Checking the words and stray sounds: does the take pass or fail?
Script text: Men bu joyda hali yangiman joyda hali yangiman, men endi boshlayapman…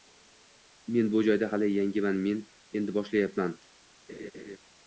fail